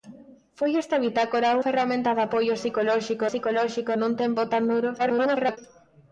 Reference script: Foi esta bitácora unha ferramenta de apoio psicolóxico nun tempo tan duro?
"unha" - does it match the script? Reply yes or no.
no